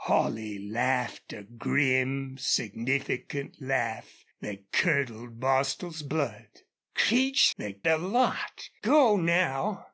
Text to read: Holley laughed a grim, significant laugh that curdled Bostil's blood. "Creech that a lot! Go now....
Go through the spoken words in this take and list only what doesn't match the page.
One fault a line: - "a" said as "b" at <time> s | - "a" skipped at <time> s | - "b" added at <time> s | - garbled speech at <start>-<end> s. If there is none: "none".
none